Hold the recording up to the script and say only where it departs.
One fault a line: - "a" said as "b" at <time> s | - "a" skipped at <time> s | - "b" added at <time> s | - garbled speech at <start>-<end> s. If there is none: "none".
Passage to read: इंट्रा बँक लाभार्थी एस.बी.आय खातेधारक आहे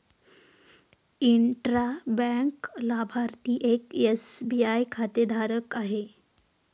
- "एक" added at 3.7 s